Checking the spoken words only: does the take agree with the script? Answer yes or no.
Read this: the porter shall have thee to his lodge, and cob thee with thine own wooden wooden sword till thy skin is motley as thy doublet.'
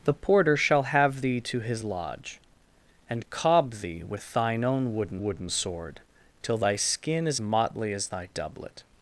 yes